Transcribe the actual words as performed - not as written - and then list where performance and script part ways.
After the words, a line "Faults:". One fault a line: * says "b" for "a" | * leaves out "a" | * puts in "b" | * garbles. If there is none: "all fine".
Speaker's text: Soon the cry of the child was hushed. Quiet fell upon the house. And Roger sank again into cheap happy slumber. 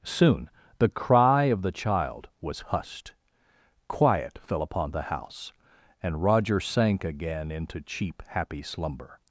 Soon the cry of the child was hushed. Quiet fell upon the house. And Roger sank again into cheap happy slumber.
Faults:
all fine